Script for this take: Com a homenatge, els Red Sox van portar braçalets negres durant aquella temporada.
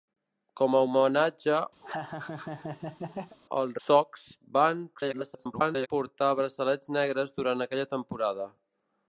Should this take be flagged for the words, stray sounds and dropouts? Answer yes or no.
yes